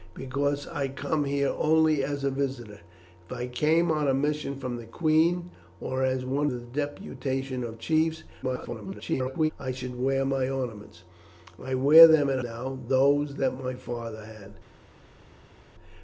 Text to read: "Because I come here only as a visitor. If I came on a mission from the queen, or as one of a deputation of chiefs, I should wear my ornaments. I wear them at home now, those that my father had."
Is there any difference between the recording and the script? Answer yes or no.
yes